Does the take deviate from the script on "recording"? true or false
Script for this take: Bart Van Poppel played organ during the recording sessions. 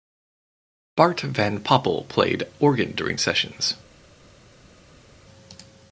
true